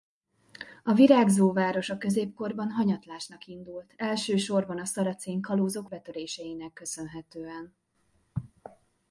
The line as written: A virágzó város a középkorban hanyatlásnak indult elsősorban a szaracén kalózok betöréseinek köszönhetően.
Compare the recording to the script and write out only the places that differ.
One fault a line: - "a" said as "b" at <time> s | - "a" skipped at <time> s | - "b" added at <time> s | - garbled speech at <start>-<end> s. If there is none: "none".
none